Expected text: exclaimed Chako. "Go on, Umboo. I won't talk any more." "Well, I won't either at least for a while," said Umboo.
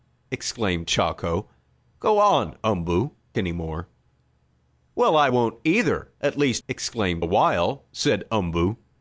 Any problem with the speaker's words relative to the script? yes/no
yes